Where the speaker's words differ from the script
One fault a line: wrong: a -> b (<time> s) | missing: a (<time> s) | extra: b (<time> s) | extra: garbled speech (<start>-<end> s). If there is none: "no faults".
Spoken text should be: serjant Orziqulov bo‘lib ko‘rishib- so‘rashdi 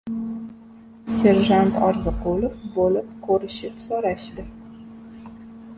no faults